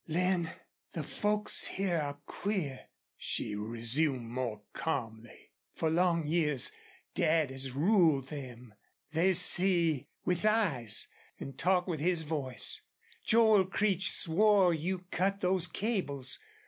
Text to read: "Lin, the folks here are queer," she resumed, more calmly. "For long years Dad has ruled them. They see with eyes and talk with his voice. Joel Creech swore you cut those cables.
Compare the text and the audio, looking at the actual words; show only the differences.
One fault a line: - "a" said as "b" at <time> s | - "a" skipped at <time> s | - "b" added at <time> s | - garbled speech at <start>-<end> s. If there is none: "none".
none